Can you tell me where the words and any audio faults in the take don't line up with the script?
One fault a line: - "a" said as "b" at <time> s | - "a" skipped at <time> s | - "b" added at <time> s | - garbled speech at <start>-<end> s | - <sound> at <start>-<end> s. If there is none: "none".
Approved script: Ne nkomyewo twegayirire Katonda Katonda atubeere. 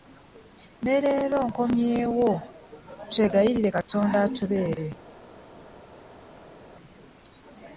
- "leero" added at 1.0 s
- "Katonda" skipped at 4.2 s